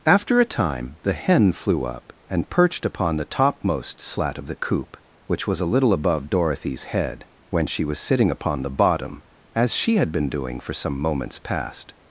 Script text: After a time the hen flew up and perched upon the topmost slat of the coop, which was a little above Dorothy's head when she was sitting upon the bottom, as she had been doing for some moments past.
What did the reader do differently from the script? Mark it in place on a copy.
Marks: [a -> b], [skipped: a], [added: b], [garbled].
After a time the hen flew up and perched upon the topmost slat of the coop, which was a little above Dorothy's head when she was sitting upon the bottom, as she had been doing for some moments past.